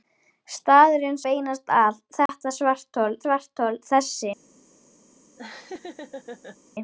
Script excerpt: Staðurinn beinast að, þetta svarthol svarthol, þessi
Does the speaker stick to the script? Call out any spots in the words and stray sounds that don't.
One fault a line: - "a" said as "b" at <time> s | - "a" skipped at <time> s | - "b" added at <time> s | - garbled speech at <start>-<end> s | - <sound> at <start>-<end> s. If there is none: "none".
- dropout at 2.3-2.3 s
- laugh at 5.4-6.6 s